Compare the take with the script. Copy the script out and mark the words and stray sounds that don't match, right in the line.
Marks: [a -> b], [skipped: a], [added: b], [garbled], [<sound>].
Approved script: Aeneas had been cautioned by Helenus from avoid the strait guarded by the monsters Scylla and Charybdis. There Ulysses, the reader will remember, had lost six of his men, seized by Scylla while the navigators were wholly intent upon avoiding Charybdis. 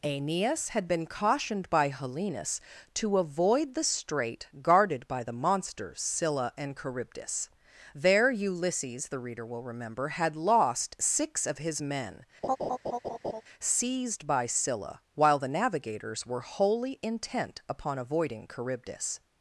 Aeneas had been cautioned by Helenus [from -> to] avoid the strait guarded by the monsters Scylla and Charybdis. There Ulysses, the reader will remember, had lost six of his men, [laugh] seized by Scylla while the navigators were wholly intent upon avoiding Charybdis.